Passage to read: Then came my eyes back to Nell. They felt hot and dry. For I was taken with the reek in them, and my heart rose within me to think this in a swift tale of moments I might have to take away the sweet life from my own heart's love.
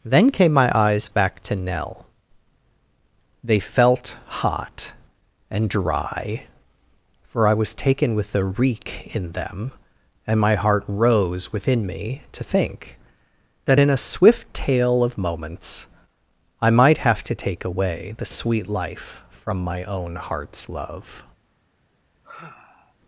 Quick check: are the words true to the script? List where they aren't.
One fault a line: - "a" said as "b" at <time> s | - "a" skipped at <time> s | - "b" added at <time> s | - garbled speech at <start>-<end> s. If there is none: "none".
- "this" said as "that" at 13.7 s